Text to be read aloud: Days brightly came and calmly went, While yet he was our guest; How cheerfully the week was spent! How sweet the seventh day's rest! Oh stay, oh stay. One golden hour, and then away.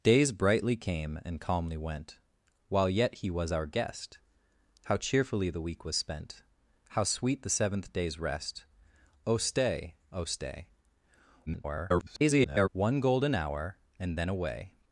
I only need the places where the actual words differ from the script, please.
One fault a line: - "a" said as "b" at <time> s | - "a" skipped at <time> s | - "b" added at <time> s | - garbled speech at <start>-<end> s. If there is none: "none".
- garbled speech at 11.5-12.7 s